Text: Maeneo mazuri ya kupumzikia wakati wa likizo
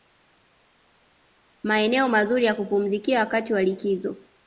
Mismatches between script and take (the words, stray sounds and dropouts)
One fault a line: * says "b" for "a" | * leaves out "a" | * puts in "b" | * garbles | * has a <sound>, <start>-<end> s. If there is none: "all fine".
all fine